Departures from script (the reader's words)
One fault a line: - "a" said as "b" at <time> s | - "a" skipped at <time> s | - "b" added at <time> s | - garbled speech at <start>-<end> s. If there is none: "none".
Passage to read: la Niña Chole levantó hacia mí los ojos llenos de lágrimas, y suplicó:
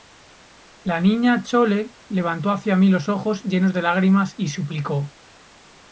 none